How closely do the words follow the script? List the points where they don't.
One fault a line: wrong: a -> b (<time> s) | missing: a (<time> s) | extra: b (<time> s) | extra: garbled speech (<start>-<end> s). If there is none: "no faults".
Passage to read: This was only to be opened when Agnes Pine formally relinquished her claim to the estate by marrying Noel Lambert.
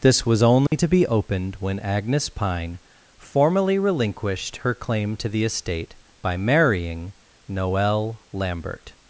no faults